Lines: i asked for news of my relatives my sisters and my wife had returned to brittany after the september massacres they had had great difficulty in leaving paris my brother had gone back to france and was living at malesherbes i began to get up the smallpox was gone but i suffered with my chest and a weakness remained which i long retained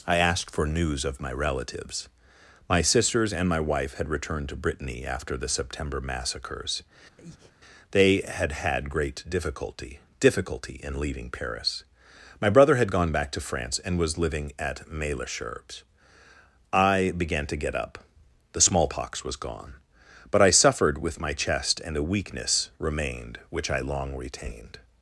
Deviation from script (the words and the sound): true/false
true